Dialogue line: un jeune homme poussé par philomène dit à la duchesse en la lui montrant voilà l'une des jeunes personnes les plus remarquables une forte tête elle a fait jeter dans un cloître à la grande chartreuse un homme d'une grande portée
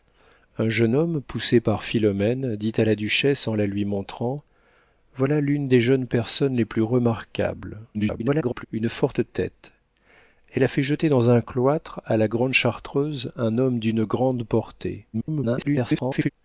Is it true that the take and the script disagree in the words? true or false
true